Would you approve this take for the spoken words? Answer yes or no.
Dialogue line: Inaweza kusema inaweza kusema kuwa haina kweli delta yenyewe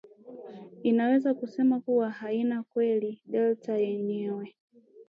no